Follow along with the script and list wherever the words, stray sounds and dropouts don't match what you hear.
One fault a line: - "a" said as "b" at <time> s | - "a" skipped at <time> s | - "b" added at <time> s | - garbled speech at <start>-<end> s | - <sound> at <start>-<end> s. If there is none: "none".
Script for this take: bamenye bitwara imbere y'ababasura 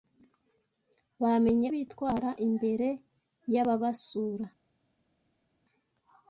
none